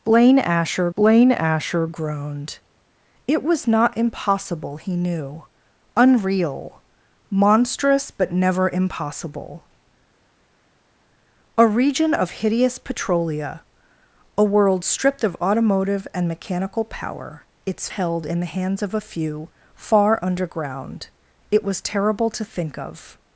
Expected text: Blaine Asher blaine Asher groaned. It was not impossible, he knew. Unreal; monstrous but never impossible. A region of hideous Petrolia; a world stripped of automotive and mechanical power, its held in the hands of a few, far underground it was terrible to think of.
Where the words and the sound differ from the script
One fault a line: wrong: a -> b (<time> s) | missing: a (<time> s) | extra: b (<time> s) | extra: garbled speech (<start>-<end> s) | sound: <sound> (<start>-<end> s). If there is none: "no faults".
no faults